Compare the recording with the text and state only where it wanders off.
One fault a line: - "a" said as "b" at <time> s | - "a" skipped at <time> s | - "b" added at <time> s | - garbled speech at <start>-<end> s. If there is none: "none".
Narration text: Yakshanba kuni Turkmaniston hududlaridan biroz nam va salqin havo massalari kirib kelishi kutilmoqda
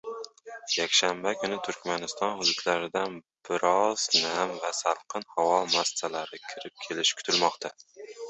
none